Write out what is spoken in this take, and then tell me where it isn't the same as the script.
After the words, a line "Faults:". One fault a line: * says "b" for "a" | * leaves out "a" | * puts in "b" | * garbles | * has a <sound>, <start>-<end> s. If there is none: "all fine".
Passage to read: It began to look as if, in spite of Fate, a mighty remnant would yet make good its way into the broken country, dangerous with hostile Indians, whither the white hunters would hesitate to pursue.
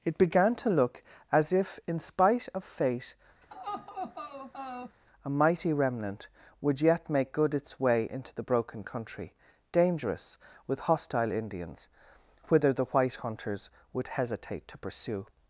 It began to look as if, in spite of Fate, a mighty remnant would yet make good its way into the broken country, dangerous with hostile Indians, whither the white hunters would hesitate to pursue.
Faults:
* has a laugh, 3.4-5.0 s